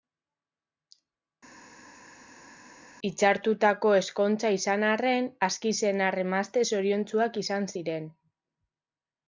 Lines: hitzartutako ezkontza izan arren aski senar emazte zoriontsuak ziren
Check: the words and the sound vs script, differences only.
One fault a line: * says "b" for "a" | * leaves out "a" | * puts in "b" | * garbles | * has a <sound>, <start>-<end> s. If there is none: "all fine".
* puts in "izan"